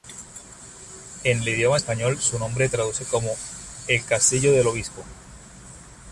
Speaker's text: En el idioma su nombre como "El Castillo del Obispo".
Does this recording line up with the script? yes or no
no